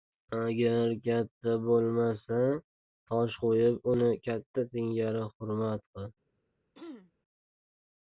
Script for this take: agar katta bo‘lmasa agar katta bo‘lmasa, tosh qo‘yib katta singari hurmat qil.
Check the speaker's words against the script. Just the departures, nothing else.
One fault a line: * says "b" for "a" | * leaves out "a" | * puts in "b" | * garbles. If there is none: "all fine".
* leaves out "agar katta bo‘lmasa"
* puts in "uni"